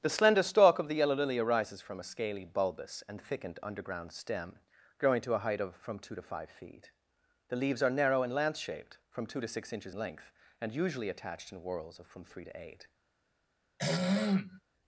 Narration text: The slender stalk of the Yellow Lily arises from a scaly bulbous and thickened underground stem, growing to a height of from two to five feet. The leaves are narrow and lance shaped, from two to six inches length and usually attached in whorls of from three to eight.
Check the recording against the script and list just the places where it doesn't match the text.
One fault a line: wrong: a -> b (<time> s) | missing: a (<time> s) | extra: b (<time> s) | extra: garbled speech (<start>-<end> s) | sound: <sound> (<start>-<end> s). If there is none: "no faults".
sound: throat clearing (13.8-14.6 s)